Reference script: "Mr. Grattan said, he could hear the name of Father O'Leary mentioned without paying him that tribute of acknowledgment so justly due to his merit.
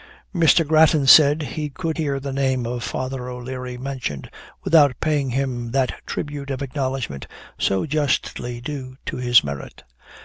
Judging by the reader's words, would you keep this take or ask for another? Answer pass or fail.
pass